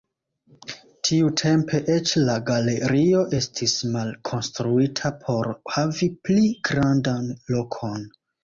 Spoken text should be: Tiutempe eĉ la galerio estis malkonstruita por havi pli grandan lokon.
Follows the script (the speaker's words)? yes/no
yes